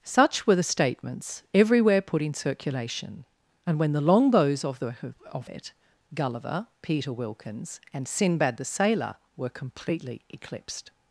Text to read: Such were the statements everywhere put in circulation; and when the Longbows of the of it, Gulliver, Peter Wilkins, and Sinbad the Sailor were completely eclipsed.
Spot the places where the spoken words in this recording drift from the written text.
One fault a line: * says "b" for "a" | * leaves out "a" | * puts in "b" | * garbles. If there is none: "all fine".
all fine